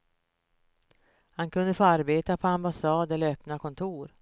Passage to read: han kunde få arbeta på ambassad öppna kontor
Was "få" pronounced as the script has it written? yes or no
yes